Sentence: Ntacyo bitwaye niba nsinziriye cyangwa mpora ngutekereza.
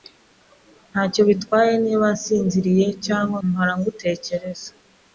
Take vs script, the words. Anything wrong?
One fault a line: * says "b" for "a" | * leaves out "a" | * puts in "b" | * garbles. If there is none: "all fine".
all fine